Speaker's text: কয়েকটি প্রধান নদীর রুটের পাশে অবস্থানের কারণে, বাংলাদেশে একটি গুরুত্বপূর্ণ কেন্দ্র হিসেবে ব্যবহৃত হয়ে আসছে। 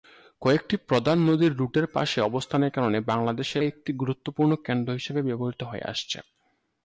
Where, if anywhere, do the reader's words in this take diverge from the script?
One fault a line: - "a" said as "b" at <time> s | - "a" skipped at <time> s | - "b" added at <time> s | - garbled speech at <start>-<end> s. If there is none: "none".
none